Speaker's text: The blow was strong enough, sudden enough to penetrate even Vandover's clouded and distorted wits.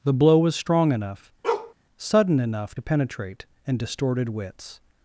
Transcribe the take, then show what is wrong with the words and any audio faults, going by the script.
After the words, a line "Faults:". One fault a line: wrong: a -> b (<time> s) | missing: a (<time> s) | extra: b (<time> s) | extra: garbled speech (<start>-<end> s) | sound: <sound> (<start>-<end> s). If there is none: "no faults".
The blow was strong enough, sudden enough to penetrate and distorted wits.
Faults:
sound: bark (1.4-1.7 s)
missing: even Vandover's clouded (3.5 s)